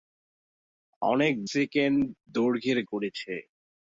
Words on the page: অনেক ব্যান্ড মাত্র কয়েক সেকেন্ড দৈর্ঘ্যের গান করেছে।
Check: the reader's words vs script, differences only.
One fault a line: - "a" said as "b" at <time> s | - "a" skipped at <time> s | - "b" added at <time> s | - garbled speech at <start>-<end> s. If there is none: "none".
- "ব্যান্ড মাত্র কয়েক" skipped at 1.3 s
- "গান" skipped at 2.8 s